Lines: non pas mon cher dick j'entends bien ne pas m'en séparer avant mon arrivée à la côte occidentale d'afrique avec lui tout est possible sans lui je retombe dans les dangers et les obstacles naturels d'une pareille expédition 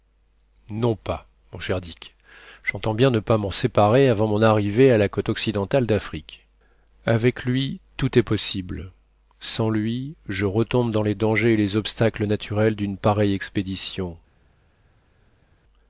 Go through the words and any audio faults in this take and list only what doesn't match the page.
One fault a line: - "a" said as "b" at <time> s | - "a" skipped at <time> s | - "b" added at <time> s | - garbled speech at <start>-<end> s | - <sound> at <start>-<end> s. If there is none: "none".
none